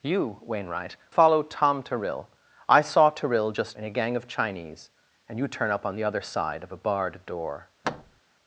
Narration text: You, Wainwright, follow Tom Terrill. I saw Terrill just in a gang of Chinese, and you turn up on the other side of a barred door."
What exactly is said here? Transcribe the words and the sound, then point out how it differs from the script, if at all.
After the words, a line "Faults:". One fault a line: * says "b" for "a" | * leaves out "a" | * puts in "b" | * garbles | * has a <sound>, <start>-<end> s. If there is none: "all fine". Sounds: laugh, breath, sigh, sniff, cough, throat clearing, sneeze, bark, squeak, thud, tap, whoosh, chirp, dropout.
You, Wainwright, follow Tom Terrill. I saw Terrill just in a gang of Chinese, and you turn up on the other side of a barred door."
Faults:
* has a thud, 7.8-8.2 s